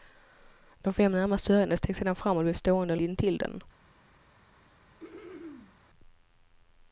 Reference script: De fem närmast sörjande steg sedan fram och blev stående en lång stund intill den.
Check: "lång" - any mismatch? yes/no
yes